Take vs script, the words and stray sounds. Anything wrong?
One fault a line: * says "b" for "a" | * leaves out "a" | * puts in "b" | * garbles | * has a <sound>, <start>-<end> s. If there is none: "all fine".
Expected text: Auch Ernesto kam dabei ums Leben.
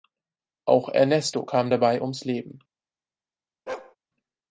* has a bark, 3.7-4.0 s